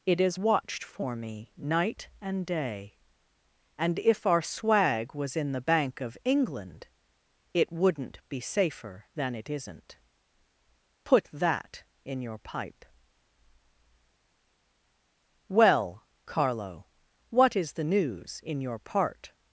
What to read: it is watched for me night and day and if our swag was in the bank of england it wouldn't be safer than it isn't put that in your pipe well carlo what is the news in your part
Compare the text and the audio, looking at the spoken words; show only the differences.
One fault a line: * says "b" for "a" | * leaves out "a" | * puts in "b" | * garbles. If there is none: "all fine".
all fine